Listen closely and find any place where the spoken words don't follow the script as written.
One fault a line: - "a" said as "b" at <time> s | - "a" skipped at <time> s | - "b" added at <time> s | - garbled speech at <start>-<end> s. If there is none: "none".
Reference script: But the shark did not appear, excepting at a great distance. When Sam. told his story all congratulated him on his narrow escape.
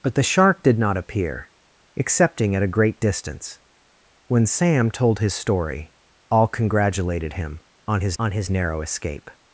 - "on his" added at 8.2 s